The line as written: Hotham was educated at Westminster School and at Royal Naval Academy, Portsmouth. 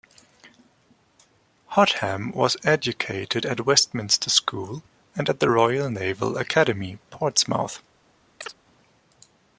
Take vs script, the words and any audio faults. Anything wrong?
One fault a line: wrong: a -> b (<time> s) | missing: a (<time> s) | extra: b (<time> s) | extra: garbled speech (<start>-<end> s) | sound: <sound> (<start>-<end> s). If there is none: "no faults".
extra: the (5.4 s)
sound: chirp (8.4-8.5 s)